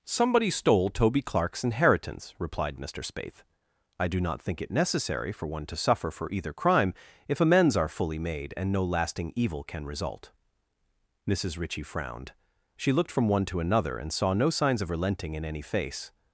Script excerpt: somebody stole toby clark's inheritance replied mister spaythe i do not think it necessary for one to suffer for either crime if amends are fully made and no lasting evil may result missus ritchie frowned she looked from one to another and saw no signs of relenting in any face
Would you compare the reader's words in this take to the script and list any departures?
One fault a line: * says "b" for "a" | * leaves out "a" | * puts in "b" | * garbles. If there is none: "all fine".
* says "can" for "may"